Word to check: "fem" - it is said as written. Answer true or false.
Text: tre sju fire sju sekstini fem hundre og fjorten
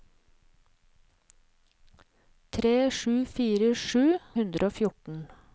false